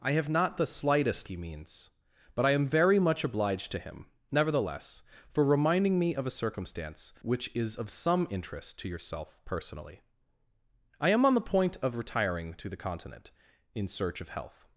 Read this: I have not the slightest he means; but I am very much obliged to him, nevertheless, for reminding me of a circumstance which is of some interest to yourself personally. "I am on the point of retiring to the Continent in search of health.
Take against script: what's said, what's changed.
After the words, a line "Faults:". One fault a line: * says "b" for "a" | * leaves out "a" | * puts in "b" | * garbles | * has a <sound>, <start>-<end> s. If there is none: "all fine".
I have not the slightest he means; but I am very much obliged to him, nevertheless, for reminding me of a circumstance which is of some interest to yourself personally. "I am on the point of retiring to the Continent in search of health.
Faults:
all fine